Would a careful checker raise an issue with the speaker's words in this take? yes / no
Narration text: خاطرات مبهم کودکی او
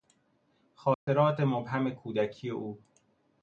no